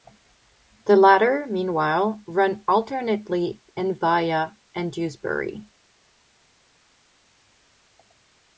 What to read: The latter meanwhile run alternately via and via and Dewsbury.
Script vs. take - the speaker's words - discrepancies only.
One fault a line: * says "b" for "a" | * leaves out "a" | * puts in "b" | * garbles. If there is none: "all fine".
* leaves out "via"